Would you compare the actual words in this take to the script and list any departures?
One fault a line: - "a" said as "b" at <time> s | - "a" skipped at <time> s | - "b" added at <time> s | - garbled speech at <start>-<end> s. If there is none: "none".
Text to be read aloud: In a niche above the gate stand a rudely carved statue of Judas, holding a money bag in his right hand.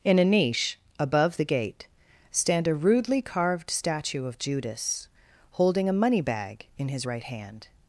none